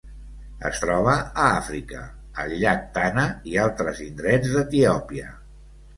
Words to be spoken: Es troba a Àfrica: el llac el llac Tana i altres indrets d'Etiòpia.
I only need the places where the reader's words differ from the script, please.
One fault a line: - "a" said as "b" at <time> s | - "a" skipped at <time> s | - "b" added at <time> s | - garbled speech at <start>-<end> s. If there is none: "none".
- "el llac" skipped at 2.8 s